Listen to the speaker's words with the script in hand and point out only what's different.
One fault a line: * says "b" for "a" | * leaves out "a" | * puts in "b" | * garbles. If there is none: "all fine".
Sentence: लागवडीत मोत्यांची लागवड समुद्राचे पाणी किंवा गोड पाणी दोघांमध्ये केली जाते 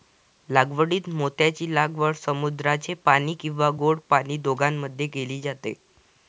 all fine